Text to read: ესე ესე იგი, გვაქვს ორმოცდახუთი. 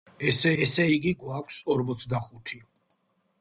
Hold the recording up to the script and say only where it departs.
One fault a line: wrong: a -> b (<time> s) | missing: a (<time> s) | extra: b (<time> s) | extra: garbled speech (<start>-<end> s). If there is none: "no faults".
no faults